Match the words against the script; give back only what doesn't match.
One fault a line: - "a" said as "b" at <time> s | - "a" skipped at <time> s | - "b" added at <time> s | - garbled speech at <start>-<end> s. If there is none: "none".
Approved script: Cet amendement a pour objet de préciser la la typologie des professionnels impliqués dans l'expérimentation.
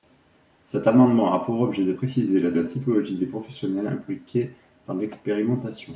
none